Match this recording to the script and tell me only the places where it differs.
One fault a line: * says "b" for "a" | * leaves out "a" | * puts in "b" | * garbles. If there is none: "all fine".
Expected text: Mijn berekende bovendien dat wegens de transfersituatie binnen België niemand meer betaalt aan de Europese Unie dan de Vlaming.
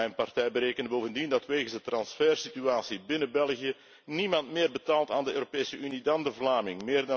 * puts in "partij"